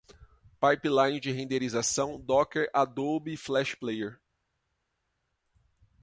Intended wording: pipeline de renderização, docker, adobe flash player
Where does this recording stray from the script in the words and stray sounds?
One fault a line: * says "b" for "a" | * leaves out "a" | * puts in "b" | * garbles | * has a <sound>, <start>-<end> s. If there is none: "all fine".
all fine